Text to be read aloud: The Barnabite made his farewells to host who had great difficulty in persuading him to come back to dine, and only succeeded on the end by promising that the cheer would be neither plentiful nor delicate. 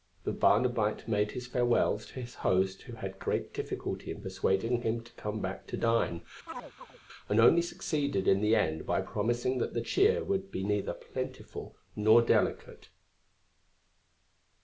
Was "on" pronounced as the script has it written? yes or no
no